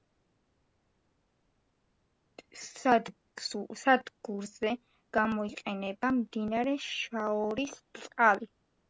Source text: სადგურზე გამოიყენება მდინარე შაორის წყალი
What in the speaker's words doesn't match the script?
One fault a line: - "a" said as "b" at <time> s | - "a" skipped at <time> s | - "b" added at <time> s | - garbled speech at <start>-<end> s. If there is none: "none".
none